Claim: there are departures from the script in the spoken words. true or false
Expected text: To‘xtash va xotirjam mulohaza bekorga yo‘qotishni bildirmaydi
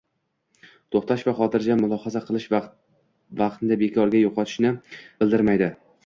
true